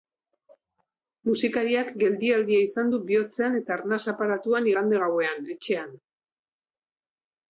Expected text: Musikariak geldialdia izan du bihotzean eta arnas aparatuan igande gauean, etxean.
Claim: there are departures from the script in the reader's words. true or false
false